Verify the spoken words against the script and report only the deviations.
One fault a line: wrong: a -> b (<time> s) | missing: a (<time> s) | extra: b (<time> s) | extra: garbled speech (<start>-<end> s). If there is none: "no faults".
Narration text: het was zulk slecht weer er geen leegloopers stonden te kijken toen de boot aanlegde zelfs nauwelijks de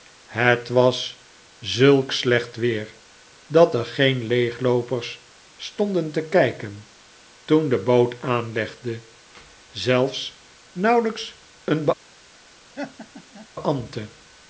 extra: dat (3.5 s)
wrong: de -> een (11.6 s)